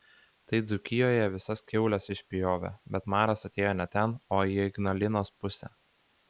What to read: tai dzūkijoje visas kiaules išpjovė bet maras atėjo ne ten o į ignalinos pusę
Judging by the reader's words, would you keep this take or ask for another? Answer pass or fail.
pass